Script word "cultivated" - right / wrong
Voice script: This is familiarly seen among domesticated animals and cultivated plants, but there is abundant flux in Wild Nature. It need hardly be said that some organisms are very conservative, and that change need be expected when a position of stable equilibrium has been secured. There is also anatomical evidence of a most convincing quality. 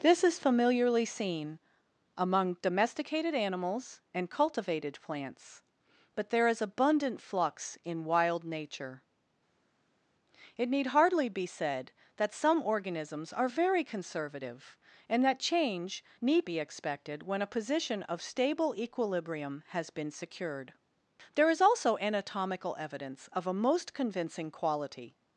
right